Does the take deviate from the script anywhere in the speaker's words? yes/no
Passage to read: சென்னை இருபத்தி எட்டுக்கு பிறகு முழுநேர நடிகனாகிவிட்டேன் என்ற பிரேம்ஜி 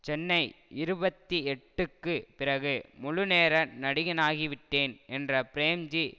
no